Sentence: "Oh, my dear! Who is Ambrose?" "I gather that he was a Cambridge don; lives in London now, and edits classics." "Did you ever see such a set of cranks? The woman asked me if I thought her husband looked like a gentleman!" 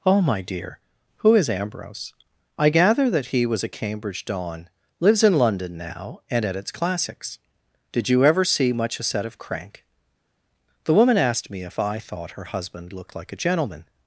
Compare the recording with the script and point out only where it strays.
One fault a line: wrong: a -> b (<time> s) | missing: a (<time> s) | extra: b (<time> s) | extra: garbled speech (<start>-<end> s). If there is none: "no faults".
wrong: such -> much (8.7 s)
wrong: cranks -> crank (9.4 s)